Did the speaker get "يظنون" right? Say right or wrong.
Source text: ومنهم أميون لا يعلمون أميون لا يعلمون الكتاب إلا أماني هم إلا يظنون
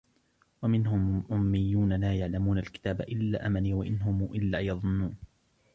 right